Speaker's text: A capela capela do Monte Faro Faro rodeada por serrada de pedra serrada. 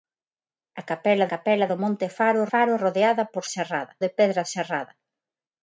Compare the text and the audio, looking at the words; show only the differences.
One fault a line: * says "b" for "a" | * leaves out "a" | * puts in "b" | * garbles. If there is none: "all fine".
all fine